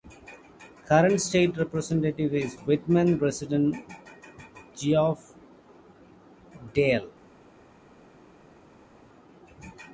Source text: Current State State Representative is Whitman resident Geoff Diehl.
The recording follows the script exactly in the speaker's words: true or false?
false